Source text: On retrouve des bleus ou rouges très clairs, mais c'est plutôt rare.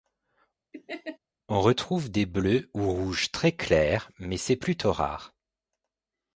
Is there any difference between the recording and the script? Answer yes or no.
no